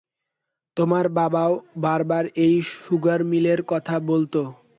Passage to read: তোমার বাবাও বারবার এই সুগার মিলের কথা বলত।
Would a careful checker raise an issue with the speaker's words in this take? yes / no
no